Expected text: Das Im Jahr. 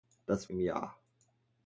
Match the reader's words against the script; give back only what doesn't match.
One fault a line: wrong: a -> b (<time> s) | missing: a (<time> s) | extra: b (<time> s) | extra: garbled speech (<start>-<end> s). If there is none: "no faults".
no faults